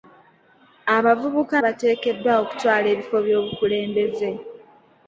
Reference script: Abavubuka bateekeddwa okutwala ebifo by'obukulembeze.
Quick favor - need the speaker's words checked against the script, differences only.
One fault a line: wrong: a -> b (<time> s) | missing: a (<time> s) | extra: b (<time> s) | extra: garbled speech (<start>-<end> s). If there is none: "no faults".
no faults